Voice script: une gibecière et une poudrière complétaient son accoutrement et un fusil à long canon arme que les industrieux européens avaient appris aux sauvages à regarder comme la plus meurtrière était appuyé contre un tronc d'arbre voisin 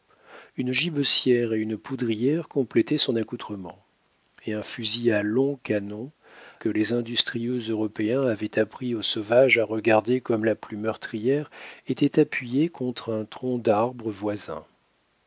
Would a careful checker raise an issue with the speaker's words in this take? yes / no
yes